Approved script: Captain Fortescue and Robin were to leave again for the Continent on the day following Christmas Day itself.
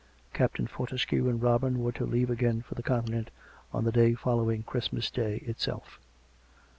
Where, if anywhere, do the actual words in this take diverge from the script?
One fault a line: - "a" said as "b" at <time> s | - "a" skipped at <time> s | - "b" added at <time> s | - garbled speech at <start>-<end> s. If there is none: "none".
none